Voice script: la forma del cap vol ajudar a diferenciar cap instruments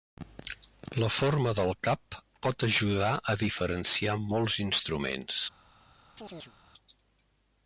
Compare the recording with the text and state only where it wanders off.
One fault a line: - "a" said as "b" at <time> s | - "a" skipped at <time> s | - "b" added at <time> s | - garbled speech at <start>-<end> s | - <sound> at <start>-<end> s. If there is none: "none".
- "vol" said as "pot" at 2.5 s
- "cap" said as "molts" at 4.3 s
- chirp at 6.2-6.5 s